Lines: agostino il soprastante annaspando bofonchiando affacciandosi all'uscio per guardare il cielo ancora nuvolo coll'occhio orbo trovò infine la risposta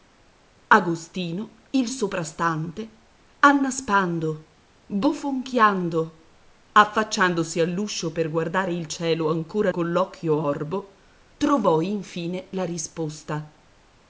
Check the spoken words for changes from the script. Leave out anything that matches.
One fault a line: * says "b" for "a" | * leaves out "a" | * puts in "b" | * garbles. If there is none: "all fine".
* leaves out "nuvolo"